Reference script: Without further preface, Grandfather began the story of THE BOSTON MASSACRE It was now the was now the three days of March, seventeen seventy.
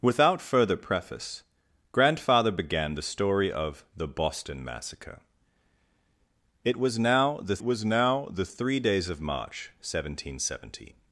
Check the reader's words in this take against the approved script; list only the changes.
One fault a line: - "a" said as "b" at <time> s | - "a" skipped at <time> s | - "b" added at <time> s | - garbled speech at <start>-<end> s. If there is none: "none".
none